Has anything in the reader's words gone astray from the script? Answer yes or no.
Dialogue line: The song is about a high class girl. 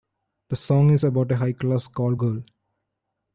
yes